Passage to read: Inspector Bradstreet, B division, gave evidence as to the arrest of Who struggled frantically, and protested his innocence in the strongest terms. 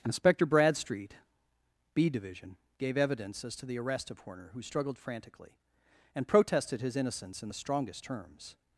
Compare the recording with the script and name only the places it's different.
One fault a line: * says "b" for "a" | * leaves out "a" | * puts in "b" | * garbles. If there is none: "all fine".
* puts in "Horner"